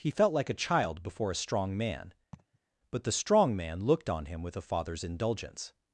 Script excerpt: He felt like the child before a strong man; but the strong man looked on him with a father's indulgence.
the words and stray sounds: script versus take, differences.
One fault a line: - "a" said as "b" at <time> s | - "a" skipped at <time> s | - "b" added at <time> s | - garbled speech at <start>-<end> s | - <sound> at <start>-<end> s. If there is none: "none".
- "the" said as "a" at 0.5 s
- laugh at 2.3-2.6 s